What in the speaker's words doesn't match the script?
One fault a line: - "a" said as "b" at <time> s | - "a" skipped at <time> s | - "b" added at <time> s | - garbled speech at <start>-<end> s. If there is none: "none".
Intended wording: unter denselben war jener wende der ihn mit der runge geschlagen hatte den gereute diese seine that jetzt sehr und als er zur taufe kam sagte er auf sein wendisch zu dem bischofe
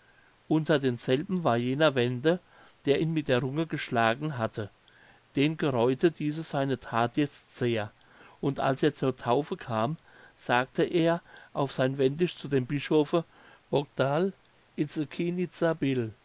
none